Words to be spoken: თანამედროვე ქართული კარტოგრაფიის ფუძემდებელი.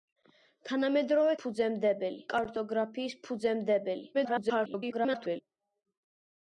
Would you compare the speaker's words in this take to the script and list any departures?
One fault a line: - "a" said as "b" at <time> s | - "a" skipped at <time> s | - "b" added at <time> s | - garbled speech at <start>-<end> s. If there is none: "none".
- "ქართული" said as "ფუძემდებელი" at 1.4 s
- garbled speech at 4.1-5.4 s